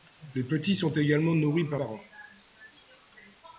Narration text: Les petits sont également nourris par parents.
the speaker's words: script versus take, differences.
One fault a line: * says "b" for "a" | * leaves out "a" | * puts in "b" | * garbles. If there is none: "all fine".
all fine